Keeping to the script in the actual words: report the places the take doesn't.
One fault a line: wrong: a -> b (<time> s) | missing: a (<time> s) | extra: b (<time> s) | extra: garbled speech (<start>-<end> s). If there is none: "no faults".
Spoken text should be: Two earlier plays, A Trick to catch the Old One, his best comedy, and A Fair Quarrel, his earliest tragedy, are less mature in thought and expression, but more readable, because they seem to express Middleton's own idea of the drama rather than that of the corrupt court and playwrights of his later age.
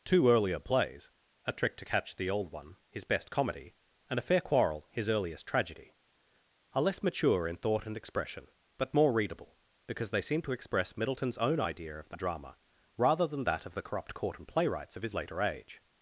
no faults